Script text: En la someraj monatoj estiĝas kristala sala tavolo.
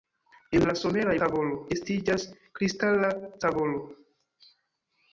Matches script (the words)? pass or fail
fail